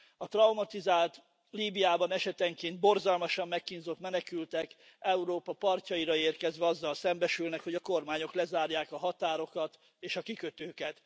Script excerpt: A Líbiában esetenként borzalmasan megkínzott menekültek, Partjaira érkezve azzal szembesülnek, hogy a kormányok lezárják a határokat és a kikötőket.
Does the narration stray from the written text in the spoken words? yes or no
yes